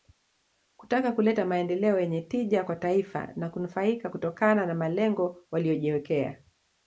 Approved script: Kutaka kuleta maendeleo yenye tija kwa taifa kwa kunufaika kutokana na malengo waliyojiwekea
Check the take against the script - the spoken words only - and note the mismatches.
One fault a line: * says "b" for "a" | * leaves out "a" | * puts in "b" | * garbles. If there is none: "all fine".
* says "na" for "kwa"